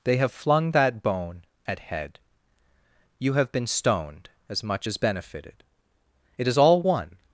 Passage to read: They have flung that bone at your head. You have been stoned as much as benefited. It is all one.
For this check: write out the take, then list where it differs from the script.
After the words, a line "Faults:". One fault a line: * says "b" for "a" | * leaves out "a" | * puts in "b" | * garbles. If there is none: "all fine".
They have flung that bone at head. You have been stoned as much as benefited. It is all one.
Faults:
* leaves out "your"